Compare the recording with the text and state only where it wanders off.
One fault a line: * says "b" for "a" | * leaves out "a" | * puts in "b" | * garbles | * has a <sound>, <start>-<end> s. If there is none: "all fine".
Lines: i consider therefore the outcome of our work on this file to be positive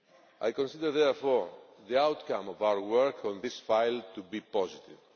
all fine